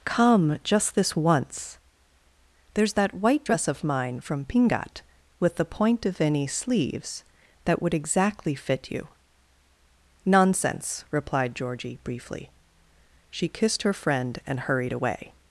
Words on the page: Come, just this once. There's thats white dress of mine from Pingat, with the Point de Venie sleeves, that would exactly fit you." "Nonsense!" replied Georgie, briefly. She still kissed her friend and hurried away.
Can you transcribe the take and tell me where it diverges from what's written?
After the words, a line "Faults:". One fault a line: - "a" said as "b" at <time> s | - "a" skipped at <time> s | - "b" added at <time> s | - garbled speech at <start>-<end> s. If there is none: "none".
Come, just this once. There's that white dress of mine from Pingat, with the Point de Venie sleeves, that would exactly fit you." "Nonsense!" replied Georgie, briefly. She kissed her friend and hurried away.
Faults:
- "thats" said as "that" at 2.9 s
- "still" skipped at 13.5 s